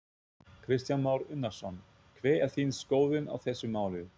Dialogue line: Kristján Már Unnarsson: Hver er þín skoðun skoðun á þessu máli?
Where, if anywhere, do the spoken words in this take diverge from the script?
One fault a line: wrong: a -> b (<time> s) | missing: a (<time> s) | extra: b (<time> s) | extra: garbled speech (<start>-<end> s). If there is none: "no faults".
missing: skoðun (3.3 s)